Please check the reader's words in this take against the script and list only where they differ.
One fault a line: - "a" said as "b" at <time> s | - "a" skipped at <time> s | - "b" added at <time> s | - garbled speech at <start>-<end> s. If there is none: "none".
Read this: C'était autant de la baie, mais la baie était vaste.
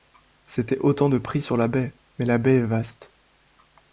- "pris sur" added at 1.2 s
- "était" said as "est" at 2.6 s